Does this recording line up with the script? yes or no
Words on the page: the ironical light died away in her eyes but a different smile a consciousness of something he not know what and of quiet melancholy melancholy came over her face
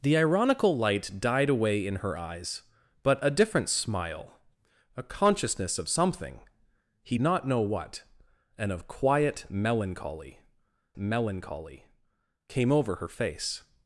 yes